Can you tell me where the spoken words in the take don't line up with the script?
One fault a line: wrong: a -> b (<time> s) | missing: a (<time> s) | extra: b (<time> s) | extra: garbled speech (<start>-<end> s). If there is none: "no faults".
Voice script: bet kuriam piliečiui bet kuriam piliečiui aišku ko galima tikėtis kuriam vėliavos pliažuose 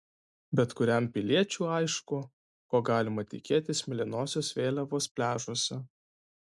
missing: bet kuriam piliečiui (1.7 s)
wrong: kuriam -> mėlynosios (3.9 s)